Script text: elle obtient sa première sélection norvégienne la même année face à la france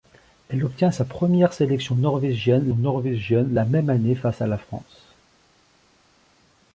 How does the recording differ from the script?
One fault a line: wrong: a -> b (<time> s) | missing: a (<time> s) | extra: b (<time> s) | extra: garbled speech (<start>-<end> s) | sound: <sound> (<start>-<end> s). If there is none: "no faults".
extra: norvégienne (2.7 s)